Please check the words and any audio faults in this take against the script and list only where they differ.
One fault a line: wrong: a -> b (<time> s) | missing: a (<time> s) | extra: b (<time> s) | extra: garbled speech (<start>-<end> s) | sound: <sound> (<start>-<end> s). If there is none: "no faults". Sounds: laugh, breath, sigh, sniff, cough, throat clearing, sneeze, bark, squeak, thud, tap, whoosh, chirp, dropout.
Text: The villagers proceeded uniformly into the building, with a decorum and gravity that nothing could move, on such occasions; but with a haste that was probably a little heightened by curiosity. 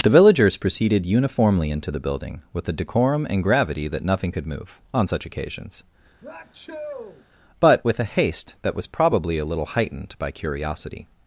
sound: sneeze (6.2-7.2 s)